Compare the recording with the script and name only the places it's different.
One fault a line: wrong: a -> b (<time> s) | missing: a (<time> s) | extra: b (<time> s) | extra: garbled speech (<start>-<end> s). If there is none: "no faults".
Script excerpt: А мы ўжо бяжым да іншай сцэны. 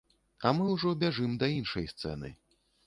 no faults